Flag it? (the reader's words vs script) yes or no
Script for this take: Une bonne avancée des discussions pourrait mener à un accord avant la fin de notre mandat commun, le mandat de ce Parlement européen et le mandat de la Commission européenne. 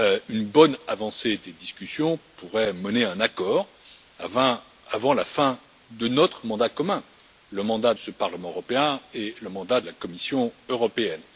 yes